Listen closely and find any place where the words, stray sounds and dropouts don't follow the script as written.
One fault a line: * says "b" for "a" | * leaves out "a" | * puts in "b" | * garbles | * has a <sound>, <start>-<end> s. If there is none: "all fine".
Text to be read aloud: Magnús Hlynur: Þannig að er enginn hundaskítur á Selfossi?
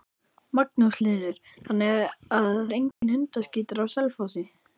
* has a dropout, 2.9-3.0 s